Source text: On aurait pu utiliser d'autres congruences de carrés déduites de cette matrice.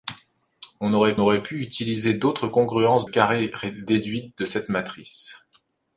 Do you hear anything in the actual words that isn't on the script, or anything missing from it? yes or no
yes